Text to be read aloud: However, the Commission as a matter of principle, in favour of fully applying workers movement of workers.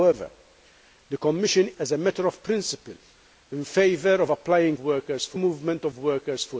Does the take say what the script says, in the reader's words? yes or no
yes